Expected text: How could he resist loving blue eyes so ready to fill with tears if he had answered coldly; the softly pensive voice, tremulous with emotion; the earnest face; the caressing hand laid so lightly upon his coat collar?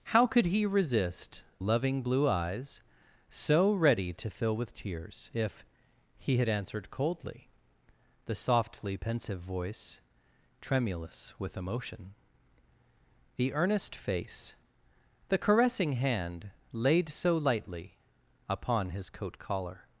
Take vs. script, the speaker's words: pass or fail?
pass